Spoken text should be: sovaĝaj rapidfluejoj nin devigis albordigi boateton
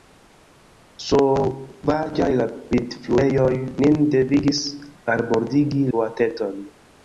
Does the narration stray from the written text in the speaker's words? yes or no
no